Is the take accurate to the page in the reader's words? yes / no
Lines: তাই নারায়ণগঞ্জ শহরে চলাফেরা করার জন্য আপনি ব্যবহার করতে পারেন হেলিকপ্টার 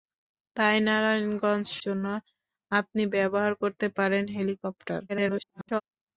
no